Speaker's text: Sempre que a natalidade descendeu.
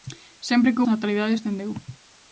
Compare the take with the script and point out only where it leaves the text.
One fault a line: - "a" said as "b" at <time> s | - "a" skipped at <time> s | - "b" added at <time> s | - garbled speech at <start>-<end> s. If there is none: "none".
none